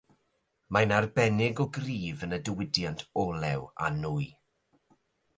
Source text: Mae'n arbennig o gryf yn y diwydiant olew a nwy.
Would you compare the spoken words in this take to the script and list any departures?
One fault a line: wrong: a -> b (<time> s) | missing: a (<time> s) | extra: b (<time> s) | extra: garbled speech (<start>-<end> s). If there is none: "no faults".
no faults